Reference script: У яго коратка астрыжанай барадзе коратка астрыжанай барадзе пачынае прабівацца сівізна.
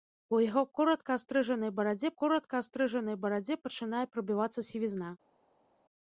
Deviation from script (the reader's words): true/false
false